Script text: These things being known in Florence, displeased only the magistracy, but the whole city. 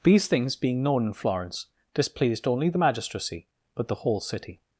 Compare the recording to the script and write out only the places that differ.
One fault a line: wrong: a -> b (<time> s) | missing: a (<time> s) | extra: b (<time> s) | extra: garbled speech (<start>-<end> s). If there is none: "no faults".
no faults